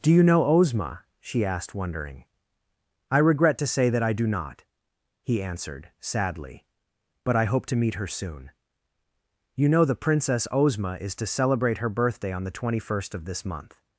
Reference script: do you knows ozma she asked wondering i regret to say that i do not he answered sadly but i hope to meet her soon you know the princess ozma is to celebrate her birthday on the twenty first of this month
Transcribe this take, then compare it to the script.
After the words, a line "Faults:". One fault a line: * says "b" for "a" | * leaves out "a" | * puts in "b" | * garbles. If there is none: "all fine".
do you know ozma she asked wondering i regret to say that i do not he answered sadly but i hope to meet her soon you know the princess ozma is to celebrate her birthday on the twenty first of this month
Faults:
* says "know" for "knows"